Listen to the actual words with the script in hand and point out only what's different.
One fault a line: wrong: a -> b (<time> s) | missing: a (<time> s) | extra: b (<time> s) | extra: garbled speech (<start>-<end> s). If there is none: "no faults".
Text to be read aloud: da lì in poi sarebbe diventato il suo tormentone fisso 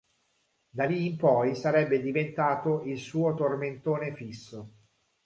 no faults